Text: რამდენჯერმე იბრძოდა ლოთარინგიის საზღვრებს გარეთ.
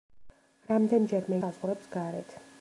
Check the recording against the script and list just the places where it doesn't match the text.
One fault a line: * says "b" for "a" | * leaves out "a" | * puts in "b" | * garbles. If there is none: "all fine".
* leaves out "იბრძოდა ლოთარინგიის"